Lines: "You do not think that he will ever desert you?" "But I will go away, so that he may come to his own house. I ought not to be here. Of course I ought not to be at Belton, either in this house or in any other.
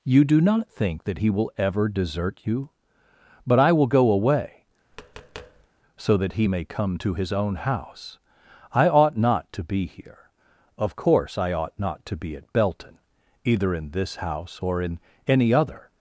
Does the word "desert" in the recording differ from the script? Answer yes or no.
no